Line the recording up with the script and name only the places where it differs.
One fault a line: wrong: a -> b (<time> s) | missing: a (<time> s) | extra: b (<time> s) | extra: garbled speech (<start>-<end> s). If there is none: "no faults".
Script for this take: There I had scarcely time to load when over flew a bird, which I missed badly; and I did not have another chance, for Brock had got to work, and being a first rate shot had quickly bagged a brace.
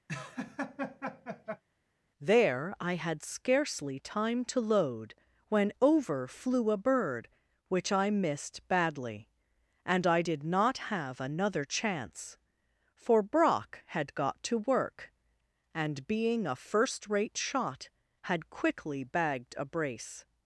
no faults